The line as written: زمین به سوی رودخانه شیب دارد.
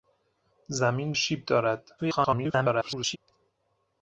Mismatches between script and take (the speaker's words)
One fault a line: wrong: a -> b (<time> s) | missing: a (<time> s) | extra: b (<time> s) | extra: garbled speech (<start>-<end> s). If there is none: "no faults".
missing: به سوی رودخانه (1.1 s)
extra: garbled speech (2.0-3.2 s)